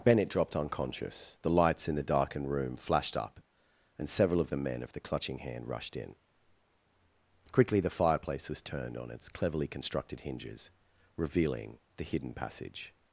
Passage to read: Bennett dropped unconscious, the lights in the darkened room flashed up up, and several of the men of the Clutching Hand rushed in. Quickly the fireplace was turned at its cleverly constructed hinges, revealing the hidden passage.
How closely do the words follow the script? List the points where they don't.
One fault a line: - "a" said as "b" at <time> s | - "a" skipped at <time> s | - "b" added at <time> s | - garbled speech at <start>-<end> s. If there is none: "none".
- "up" skipped at 3.4 s
- "at" said as "on" at 9.0 s